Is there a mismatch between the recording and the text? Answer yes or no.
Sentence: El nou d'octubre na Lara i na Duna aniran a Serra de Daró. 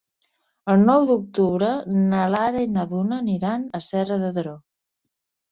no